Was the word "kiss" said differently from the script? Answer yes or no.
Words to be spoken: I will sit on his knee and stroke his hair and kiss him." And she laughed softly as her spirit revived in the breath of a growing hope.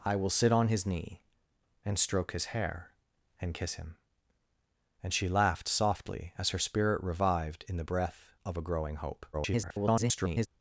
no